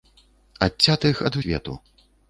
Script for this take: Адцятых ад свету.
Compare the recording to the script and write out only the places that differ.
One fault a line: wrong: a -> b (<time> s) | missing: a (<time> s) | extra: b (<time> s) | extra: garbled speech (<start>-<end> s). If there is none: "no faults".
no faults